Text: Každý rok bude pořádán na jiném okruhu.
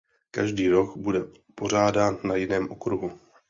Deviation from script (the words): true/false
false